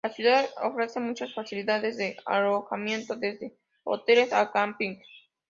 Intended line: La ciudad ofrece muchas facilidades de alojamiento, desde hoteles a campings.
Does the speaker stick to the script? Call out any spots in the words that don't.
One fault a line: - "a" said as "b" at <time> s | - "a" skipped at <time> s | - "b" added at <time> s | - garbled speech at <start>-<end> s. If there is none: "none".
none